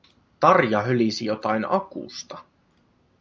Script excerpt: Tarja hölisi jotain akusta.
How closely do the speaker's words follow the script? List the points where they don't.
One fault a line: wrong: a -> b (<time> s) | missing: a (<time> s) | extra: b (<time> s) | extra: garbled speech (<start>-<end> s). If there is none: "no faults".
no faults